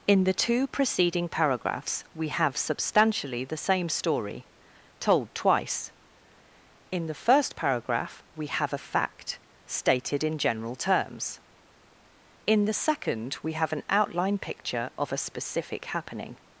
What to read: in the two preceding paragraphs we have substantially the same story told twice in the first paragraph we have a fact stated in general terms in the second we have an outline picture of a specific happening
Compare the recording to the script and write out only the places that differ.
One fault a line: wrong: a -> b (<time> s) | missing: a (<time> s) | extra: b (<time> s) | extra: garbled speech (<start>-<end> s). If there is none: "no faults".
no faults